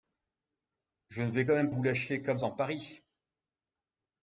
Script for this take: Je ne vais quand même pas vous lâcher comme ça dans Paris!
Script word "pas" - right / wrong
wrong